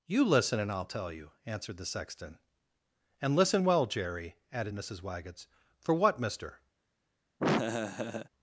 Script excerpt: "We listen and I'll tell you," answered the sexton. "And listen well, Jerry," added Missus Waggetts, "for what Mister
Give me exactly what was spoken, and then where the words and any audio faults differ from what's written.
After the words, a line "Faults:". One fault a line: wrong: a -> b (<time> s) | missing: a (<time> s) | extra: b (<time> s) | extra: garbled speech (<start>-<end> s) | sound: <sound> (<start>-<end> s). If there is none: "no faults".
"You listen and I'll tell you," answered the sexton. "And listen well, Jerry," added Missus Waggetts, "for what Mister
Faults:
wrong: We -> You (0.1 s)
sound: laugh (7.4-8.3 s)